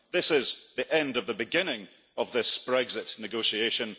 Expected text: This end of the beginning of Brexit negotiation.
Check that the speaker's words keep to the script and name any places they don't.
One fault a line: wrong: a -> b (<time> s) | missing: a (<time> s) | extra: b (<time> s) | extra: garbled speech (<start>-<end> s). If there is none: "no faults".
extra: is the (0.3 s)
extra: this (2.3 s)